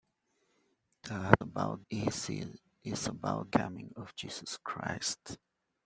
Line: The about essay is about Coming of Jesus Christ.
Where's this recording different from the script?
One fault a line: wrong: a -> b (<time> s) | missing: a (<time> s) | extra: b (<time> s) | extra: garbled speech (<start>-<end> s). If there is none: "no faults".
no faults